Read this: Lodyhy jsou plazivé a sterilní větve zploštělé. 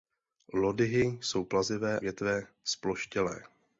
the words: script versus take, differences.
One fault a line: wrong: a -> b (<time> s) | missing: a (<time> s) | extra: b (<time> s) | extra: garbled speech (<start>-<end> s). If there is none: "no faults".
missing: a sterilní (2.0 s)